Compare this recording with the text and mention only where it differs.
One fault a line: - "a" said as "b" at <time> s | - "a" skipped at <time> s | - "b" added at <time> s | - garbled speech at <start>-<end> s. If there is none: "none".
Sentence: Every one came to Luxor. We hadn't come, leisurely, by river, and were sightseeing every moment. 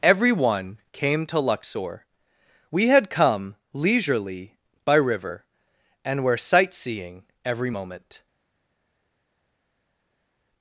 - "hadn't" said as "had" at 2.9 s